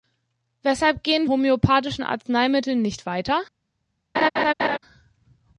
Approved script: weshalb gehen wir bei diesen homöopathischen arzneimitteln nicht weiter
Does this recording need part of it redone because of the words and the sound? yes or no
yes